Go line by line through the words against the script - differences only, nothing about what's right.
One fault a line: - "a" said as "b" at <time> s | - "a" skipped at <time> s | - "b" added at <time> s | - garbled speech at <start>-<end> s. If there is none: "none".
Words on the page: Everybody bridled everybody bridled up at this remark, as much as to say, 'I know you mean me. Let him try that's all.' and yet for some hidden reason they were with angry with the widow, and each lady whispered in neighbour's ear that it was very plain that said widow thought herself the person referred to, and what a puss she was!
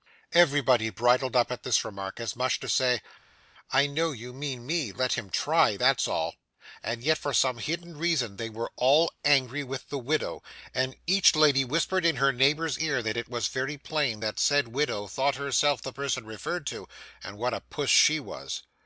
- "everybody bridled" skipped at 1.4 s
- "with" said as "all" at 8.8 s
- "her" added at 12.2 s